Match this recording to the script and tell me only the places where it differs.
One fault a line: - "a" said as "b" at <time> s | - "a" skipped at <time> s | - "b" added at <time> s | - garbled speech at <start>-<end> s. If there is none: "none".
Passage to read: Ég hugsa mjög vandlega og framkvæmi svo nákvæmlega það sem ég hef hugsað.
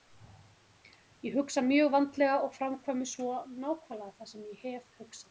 none